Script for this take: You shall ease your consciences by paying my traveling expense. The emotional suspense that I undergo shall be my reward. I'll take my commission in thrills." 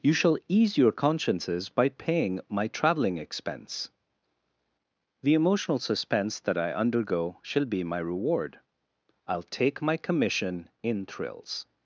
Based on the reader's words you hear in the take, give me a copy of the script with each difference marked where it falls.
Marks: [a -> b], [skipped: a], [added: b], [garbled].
You shall ease your consciences by paying my traveling expense. The emotional suspense that I undergo shall be my reward. I'll take my commission in thrills."